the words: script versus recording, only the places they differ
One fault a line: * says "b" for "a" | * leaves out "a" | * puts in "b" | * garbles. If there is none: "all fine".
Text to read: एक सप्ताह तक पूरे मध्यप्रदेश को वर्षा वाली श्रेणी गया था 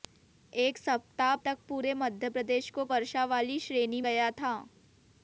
all fine